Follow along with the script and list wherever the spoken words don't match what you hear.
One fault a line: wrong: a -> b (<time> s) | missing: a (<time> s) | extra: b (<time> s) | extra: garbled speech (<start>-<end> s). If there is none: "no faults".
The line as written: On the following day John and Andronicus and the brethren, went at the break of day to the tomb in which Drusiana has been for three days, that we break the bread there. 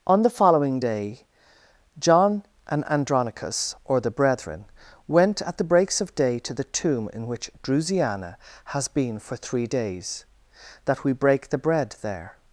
wrong: and -> or (3.8 s)
wrong: break -> breaks (5.6 s)